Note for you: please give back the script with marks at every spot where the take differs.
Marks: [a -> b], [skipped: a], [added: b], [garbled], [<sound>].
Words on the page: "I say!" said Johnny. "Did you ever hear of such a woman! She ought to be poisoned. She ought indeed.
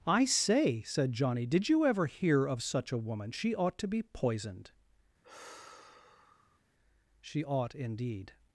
"I say!" said Johnny. "Did you ever hear of such a woman! She ought to be poisoned. [sigh] She ought indeed.